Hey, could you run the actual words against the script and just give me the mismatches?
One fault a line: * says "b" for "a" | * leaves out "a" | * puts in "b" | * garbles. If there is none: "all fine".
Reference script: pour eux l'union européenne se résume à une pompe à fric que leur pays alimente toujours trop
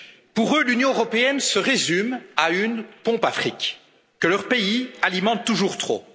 all fine